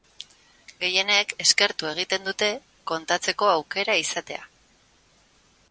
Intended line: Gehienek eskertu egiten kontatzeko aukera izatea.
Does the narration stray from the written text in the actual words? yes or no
yes